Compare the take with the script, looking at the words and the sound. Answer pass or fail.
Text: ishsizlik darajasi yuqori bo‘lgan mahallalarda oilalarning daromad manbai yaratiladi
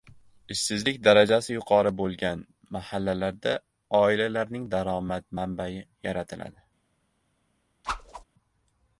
fail